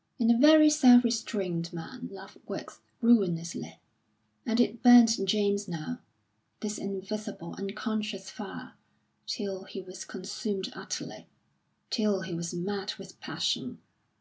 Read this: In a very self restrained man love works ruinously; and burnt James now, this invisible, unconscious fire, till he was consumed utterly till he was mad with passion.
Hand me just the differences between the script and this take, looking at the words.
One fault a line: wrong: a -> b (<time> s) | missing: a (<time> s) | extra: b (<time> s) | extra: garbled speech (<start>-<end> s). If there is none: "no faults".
extra: it (4.6 s)